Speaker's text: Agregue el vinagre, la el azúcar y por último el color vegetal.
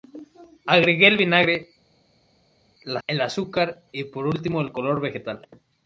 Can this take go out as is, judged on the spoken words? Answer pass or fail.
pass